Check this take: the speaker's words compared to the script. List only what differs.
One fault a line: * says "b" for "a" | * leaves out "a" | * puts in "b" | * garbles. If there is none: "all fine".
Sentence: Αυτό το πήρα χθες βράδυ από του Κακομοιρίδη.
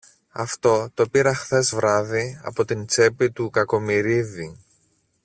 * puts in "την τσέπη"